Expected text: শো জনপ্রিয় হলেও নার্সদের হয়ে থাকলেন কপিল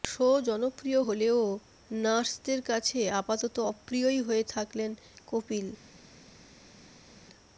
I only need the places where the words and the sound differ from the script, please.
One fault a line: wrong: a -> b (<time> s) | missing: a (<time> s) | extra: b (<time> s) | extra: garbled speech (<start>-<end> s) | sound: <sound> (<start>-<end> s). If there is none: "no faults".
extra: কাছে আপাতত অপ্রিয়ই (2.6 s)